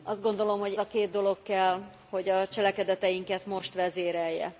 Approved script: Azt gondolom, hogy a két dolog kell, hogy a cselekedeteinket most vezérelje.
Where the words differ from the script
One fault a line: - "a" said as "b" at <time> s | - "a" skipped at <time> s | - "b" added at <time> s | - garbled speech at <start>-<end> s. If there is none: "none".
none